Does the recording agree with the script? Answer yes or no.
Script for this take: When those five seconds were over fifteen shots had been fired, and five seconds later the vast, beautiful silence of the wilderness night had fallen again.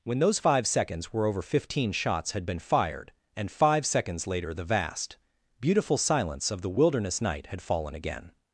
yes